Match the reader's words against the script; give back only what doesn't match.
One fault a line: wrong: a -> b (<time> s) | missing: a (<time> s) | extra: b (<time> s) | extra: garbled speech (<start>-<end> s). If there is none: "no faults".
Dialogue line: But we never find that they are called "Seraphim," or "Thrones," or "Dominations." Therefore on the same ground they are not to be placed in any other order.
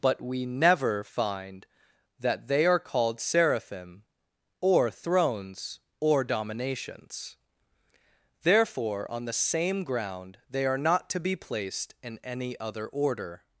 no faults